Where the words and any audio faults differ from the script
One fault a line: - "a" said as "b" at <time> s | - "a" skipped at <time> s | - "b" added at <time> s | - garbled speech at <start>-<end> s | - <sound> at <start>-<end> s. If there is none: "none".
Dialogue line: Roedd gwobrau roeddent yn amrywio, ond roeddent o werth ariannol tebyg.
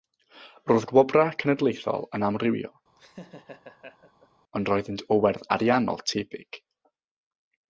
- "roeddent" said as "cenedlaethol" at 1.4 s
- laugh at 3.0-4.3 s